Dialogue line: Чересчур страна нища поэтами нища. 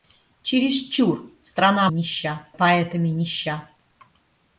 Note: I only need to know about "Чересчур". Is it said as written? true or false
true